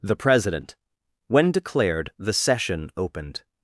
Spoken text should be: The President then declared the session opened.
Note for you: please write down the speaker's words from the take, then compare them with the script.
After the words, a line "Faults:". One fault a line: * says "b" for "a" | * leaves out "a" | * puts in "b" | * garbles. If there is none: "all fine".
The President when declared the session opened.
Faults:
* says "when" for "then"